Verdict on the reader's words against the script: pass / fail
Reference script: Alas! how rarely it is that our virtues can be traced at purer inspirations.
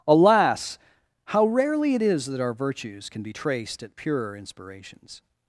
pass